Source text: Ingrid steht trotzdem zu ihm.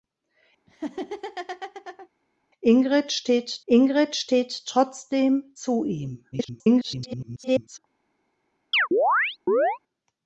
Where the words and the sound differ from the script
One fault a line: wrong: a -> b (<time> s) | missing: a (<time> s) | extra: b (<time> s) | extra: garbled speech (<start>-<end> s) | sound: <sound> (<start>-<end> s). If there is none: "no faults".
sound: laugh (0.7-2.1 s)
extra: ingrid steht (3.7 s)
extra: garbled speech (6.3-7.8 s)
sound: chirp (8.7-9.8 s)